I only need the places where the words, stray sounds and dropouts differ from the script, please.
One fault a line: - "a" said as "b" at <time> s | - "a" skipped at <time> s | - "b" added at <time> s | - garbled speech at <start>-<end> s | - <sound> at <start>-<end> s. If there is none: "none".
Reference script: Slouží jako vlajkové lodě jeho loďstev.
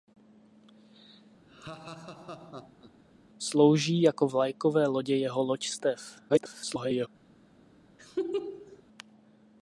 - laugh at 1.5-3.0 s
- garbled speech at 6.3-7.1 s
- laugh at 8.0-8.8 s